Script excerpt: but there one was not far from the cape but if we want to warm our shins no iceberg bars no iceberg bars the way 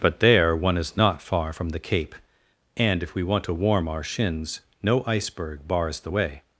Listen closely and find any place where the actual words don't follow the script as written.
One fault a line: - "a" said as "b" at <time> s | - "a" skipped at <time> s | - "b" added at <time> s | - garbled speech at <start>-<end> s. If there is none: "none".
- "was" said as "is" at 0.8 s
- "but" said as "and" at 2.8 s
- "no iceberg bars" skipped at 6.0 s